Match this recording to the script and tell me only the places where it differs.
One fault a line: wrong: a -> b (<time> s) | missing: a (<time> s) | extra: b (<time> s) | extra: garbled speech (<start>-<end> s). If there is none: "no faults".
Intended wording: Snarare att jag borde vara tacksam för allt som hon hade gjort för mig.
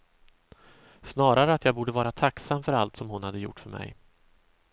no faults